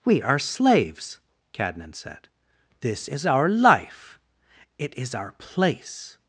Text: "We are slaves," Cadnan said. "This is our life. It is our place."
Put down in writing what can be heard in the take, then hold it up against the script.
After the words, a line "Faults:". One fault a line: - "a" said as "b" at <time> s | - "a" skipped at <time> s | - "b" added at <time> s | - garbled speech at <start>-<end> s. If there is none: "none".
"We are slaves," Cadnan said. "This is our life. It is our place."
Faults:
none